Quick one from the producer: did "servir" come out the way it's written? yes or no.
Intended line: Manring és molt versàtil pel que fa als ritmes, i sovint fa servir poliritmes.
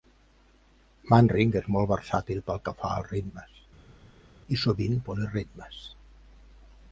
no